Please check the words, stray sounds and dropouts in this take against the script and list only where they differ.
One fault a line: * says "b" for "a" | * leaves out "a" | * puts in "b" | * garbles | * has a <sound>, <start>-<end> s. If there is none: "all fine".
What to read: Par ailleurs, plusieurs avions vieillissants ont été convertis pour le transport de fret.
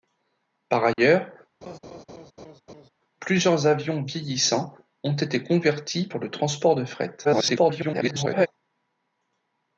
* has a dropout, 0.9-1.0 s
* has a laugh, 1.6-2.9 s
* garbles